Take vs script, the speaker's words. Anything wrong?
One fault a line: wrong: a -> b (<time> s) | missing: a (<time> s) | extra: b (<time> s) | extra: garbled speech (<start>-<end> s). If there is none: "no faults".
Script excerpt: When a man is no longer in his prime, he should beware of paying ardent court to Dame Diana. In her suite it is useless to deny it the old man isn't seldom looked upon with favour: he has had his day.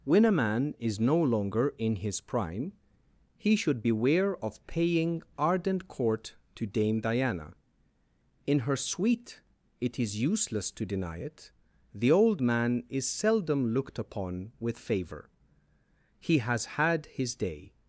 wrong: isn't -> is (12.9 s)